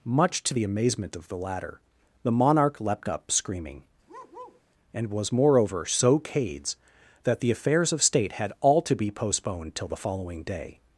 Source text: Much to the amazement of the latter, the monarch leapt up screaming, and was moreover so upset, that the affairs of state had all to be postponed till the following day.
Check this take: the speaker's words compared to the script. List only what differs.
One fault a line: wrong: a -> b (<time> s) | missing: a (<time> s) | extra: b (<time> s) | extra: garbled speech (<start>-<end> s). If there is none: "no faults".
wrong: upset -> cades (6.2 s)